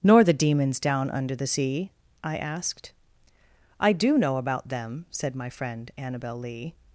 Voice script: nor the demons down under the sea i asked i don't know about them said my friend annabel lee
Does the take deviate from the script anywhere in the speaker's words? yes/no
yes